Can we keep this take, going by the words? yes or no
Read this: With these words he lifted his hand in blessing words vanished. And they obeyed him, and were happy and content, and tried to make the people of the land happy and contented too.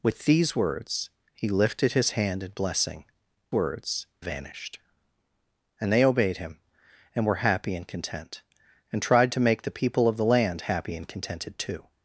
yes